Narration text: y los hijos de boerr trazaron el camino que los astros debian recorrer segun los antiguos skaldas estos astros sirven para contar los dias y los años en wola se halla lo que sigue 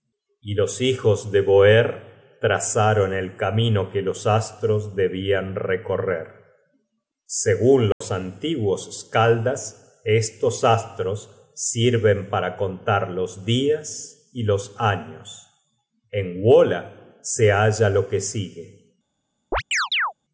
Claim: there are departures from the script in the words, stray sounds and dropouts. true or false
true